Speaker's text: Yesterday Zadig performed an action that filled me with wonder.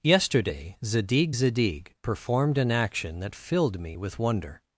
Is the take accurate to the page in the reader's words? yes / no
no